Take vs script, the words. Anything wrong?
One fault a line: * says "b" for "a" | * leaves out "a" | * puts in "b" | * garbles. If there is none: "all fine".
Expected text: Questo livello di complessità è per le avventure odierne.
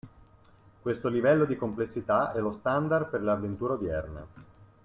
* puts in "lo standard"